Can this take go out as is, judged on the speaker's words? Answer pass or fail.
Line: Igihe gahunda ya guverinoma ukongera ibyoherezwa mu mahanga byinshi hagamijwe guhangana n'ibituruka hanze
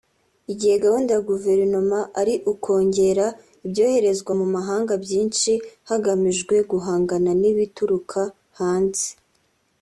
fail